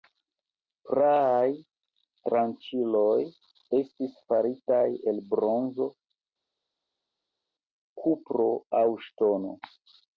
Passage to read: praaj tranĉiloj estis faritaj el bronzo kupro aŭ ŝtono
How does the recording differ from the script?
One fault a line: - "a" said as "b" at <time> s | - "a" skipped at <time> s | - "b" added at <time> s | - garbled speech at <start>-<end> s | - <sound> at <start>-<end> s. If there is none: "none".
none